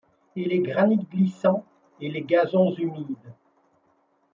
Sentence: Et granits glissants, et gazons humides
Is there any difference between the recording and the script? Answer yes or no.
yes